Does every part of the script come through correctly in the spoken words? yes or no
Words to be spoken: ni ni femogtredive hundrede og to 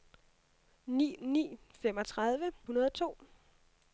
yes